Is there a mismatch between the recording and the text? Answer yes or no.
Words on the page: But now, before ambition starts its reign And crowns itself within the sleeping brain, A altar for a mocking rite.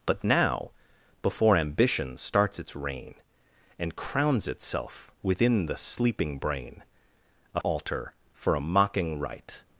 no